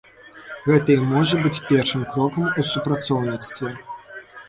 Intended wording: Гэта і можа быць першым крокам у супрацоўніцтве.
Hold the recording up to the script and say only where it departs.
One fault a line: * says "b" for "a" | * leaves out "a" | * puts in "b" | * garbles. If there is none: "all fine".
all fine